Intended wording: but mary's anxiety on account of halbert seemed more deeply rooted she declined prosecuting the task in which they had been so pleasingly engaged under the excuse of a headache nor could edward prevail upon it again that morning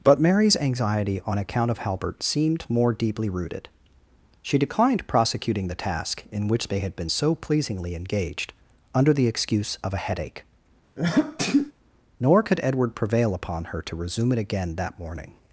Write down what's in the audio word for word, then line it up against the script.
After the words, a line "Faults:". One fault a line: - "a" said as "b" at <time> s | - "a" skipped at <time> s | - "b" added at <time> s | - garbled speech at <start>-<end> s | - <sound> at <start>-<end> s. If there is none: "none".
but mary's anxiety on account of halbert seemed more deeply rooted she declined prosecuting the task in which they had been so pleasingly engaged under the excuse of a headache nor could edward prevail upon her to resume it again that morning
Faults:
- sneeze at 11.0-11.7 s
- "her to resume" added at 13.7 s